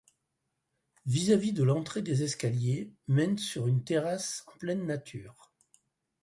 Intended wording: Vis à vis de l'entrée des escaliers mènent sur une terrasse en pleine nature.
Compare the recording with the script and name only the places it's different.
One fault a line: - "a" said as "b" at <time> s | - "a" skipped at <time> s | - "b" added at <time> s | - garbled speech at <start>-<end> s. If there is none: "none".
none